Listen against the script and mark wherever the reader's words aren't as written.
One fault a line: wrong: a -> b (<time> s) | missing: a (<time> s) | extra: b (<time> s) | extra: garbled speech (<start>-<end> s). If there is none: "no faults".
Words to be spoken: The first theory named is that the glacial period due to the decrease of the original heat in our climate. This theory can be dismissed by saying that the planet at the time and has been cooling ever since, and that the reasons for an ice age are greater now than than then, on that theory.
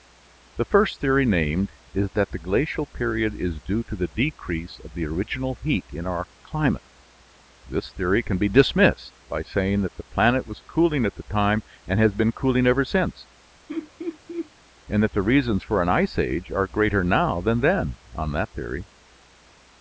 extra: is (3.4 s)
extra: was cooling (10.5 s)
missing: than (17.6 s)